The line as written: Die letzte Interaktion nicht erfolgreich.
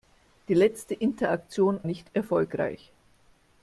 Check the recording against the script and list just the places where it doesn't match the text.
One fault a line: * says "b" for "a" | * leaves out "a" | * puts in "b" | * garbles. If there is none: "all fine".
all fine